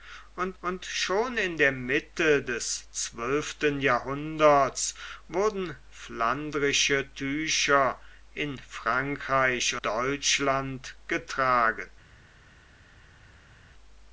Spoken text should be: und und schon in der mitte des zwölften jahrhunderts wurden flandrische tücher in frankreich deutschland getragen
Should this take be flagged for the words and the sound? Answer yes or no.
no